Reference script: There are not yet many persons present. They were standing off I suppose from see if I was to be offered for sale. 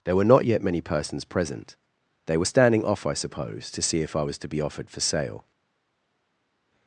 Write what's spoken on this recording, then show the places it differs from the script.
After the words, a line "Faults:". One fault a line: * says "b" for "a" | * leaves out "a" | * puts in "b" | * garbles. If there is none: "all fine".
There were not yet many persons present. They were standing off I suppose to see if I was to be offered for sale.
Faults:
* says "were" for "are"
* says "to" for "from"